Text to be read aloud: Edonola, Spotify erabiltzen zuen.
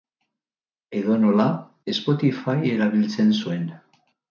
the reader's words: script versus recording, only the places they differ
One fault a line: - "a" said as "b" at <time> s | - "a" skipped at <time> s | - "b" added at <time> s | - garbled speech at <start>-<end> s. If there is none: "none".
none